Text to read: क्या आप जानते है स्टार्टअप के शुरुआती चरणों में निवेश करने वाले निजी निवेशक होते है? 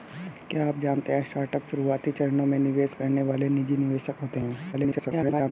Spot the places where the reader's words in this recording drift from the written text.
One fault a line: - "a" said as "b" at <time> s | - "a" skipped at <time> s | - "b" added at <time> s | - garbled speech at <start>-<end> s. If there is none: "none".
- "के" skipped at 1.7 s
- garbled speech at 4.7-5.5 s